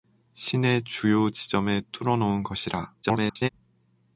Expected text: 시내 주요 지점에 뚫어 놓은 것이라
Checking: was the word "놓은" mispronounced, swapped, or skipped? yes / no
no